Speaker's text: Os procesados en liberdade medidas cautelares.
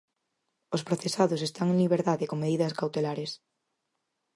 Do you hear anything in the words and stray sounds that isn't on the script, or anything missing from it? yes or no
yes